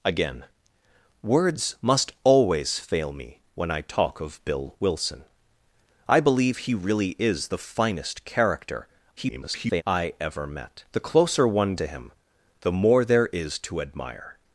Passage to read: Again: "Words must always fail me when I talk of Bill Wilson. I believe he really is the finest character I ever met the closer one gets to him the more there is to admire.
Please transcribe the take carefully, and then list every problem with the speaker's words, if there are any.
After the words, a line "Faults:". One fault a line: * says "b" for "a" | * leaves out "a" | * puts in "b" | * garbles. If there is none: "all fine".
Again: "Words must always fail me when I talk of Bill Wilson. I believe he really is the finest character [garbled] I ever met the closer one to him the more there is to admire.
Faults:
* garbles
* leaves out "gets"